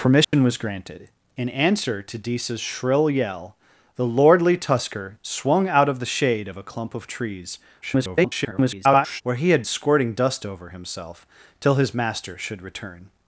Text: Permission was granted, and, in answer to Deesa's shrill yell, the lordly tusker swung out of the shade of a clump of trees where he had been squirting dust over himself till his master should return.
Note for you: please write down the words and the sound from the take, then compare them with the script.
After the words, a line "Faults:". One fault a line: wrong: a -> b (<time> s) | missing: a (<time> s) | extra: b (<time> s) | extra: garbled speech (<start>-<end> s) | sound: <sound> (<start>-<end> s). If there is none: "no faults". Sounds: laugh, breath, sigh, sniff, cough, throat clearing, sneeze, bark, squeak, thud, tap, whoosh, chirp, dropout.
Permission was granted, in answer to Deesa's shrill yell, the lordly tusker swung out of the shade of a clump of trees [garbled] where he had squirting dust over himself till his master should return.
Faults:
sound: dropout (0.2-0.3 s)
missing: and (1.1 s)
extra: garbled speech (7.8-9.2 s)
missing: been (9.6 s)